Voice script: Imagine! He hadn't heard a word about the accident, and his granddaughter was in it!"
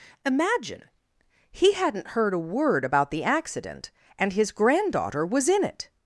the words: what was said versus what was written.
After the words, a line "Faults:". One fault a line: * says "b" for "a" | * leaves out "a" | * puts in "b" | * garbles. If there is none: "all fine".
Imagine! He hadn't heard a word about the accident, and his granddaughter was in it!"
Faults:
all fine